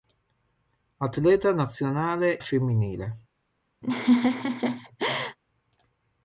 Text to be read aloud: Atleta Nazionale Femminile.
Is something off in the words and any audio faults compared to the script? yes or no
yes